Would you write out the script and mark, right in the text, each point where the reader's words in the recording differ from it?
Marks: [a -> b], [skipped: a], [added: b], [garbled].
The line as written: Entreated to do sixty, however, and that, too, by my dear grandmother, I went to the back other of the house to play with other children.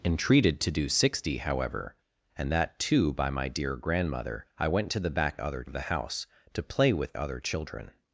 Entreated to do sixty, however, and that, too, by my dear grandmother, I went to the back other of the house to play with other children.